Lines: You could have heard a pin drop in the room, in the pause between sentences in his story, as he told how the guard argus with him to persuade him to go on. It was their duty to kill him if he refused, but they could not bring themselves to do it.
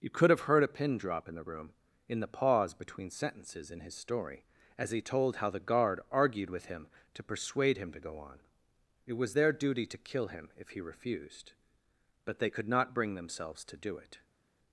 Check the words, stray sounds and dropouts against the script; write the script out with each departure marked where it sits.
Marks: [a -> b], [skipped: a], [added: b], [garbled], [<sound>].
You could have heard a pin drop in the room, in the pause between sentences in his story, as he told how the guard [argus -> argued] with him to persuade him to go on. It was their duty to kill him if he refused, but they could not bring themselves to do it.